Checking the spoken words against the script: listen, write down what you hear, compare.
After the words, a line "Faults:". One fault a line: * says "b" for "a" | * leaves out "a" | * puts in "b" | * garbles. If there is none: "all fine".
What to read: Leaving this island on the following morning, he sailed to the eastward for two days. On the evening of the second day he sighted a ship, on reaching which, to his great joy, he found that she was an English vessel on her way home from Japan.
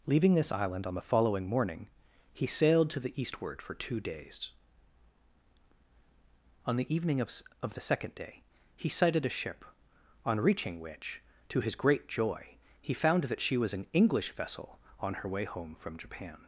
Leaving this island on the following morning, he sailed to the eastward for two days. On the evening of of the second day he sighted a ship, on reaching which, to his great joy, he found that she was an English vessel on her way home from Japan.
Faults:
* puts in "of"